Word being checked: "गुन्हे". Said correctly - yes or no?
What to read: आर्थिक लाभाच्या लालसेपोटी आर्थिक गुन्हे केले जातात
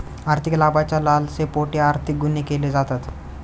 yes